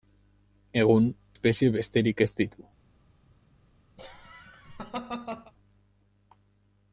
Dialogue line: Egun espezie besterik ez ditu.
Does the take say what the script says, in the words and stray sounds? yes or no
no